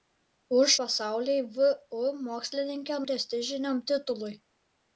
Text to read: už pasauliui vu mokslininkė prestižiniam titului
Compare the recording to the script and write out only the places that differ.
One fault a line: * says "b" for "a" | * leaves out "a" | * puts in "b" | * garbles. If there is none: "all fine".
all fine